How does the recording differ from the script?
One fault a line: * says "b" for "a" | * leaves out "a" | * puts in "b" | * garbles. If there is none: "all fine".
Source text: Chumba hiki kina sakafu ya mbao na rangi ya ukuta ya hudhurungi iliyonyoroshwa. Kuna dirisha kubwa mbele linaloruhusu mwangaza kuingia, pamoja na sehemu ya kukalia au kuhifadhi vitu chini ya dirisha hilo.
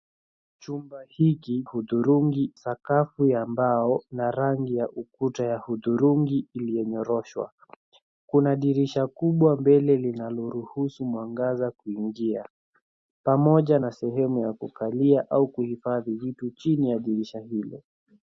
* says "hudhurungi" for "kina"